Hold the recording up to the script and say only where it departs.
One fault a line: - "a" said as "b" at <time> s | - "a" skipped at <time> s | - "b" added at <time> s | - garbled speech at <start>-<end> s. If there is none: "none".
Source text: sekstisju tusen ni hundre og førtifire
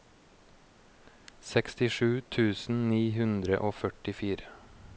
none